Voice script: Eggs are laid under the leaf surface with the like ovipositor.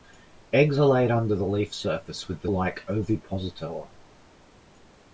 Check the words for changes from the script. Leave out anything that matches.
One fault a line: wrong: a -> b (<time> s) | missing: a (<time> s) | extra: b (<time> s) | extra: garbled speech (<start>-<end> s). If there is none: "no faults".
no faults